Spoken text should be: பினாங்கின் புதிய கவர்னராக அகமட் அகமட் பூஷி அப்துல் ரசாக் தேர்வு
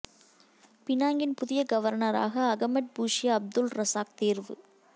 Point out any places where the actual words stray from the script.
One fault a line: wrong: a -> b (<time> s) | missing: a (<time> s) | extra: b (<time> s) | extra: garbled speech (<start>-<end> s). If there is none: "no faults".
missing: அகமட் (2.9 s)